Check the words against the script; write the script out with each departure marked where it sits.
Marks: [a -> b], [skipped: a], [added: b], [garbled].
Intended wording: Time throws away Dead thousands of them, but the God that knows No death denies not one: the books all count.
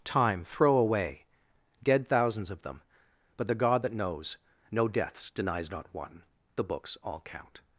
Time [throws -> throw] away Dead thousands of them, but the God that knows No [death -> deaths] denies not one: the books all count.